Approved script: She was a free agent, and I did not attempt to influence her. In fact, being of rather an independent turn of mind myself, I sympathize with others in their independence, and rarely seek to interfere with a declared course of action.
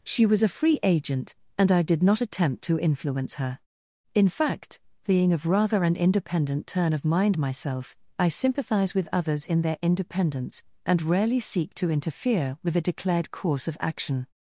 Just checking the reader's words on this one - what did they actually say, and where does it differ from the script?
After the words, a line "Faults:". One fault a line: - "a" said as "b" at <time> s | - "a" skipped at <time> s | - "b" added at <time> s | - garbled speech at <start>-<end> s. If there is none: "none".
She was a free agent, and I did not attempt to influence her. In fact, being of rather an independent turn of mind myself, I sympathize with others in their independence, and rarely seek to interfere with a declared course of action.
Faults:
none